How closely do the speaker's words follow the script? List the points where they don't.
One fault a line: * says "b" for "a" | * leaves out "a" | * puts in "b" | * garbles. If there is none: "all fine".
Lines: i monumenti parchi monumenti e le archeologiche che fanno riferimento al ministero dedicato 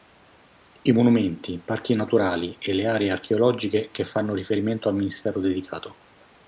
* says "naturali" for "monumenti"
* puts in "aree"